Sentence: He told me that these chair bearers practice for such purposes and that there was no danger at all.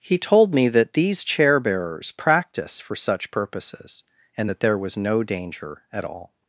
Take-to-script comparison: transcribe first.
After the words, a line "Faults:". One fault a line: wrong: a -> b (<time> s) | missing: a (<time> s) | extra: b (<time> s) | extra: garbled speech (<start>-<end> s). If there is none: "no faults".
He told me that these chair bearers practice for such purposes and that there was no danger at all.
Faults:
no faults